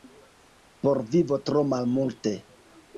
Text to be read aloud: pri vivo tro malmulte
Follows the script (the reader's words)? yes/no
no